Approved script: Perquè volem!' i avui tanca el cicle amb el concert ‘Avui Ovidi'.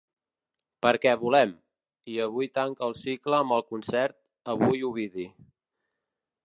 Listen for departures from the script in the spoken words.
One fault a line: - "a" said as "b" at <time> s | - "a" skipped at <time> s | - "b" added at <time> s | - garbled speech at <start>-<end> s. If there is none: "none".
none